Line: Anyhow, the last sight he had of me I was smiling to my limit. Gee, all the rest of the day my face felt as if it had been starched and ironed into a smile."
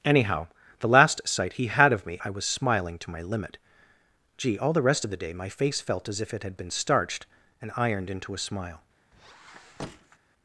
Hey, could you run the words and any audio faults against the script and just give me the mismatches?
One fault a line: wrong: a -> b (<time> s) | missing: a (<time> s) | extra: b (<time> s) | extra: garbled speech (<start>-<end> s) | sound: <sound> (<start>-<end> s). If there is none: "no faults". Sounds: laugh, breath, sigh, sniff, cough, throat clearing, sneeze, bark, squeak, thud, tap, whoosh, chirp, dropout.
sound: squeak (9.1-10.2 s)